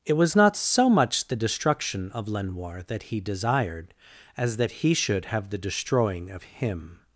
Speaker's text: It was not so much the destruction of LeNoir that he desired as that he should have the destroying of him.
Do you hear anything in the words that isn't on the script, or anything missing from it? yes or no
no